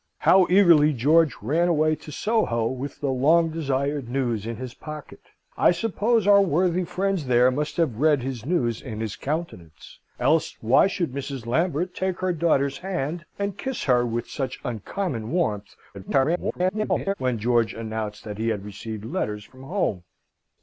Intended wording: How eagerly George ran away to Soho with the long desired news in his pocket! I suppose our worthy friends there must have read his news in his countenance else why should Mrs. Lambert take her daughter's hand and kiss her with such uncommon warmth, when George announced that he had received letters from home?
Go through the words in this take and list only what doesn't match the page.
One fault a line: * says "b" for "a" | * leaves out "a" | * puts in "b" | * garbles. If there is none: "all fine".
* garbles